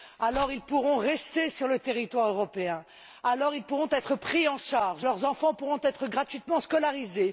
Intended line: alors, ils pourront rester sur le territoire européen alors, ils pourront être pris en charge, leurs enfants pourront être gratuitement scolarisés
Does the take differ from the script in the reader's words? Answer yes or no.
no